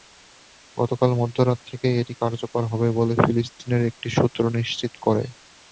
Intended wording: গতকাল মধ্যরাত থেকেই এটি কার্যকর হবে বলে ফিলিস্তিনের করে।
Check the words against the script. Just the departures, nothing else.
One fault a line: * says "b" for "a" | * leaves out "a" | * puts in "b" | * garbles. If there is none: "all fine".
* puts in "একটি সূত্র নিশ্চিত"